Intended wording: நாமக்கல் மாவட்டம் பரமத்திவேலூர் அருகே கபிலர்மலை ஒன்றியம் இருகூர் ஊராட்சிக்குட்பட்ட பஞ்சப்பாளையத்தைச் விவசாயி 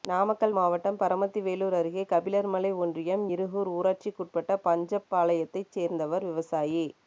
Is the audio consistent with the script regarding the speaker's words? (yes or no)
no